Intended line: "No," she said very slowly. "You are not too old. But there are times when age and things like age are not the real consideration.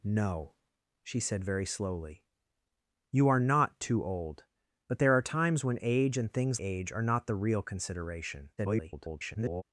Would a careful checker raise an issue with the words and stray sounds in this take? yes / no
yes